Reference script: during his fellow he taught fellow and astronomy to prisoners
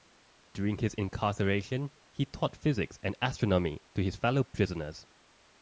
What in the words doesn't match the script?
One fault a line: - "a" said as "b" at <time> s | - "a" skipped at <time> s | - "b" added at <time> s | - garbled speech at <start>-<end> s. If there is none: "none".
- "fellow" said as "incarceration" at 0.9 s
- "fellow" said as "physics" at 2.5 s
- "his fellow" added at 4.0 s